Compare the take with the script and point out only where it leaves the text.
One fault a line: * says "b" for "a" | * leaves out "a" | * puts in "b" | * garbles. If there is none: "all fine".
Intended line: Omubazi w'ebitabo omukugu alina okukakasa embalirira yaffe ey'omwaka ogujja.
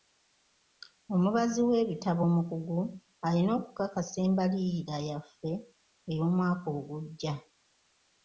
all fine